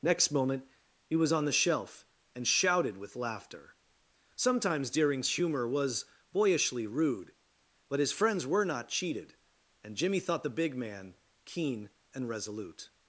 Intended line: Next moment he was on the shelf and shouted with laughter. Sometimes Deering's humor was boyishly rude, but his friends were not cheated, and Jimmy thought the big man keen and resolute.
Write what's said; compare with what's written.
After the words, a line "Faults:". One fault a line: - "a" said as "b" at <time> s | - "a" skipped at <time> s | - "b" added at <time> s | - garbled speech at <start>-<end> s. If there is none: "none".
Next moment he was on the shelf and shouted with laughter. Sometimes Deering's humor was boyishly rude, but his friends were not cheated, and Jimmy thought the big man keen and resolute.
Faults:
none